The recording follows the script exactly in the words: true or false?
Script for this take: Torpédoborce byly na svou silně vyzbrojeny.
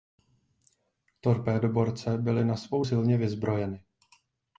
true